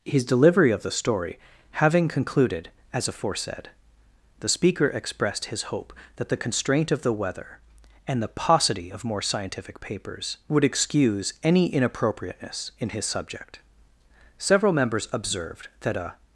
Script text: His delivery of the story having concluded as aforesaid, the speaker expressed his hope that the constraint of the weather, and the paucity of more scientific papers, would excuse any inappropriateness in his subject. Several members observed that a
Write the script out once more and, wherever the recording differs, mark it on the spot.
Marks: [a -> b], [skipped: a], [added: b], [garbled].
His delivery of the story having concluded as aforesaid, the speaker expressed his hope that the constraint of the weather, and the paucity of more scientific papers, would excuse any inappropriateness in his subject. Several members observed that a